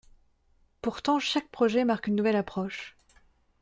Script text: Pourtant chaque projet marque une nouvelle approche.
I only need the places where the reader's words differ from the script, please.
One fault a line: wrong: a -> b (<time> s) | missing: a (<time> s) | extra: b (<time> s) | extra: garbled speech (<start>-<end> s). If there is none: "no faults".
no faults